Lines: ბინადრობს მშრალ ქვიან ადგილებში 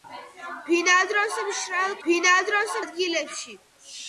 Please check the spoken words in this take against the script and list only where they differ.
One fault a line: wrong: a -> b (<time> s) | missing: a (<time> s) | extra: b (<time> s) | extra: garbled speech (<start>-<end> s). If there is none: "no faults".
wrong: ქვიან -> ბინადრობს (2.1 s)